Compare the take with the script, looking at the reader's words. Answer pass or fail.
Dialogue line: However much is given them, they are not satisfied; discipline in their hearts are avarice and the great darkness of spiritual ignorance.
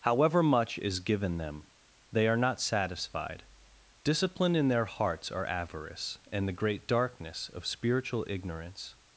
pass